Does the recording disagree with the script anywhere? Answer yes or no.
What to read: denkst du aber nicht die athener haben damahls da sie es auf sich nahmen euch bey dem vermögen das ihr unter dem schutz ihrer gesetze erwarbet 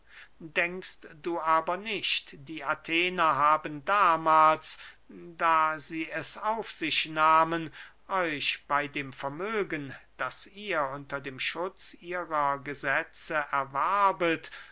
no